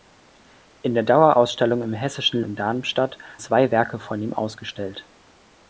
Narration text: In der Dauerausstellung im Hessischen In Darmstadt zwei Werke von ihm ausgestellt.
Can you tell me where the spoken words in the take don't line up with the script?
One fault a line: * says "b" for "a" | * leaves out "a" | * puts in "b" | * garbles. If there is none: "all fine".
all fine